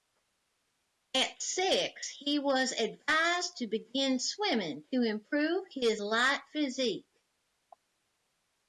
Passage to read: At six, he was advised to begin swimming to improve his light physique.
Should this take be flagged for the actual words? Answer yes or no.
no